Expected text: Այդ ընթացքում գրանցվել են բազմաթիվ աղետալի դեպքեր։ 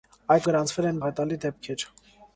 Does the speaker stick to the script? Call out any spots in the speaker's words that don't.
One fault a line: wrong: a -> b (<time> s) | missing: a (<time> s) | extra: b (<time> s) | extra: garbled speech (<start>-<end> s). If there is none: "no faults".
missing: ընթացքում (0.5 s)
missing: բազմաթիվ (1.0 s)